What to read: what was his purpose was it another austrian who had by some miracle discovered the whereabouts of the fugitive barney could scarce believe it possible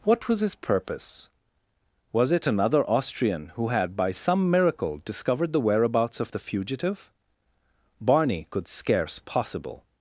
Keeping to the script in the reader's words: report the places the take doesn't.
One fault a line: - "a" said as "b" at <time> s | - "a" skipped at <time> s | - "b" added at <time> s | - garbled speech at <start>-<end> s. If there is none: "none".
- "believe it" skipped at 9.2 s